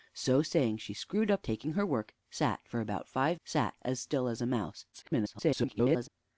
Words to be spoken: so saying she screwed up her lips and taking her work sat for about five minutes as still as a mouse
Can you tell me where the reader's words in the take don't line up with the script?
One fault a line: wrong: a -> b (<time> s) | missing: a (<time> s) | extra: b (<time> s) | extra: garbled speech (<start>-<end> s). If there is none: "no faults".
missing: her lips and (1.4 s)
wrong: minutes -> sat (3.4 s)
extra: garbled speech (4.9-6.1 s)